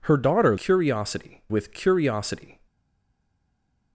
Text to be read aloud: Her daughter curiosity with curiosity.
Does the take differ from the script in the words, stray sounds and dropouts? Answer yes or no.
no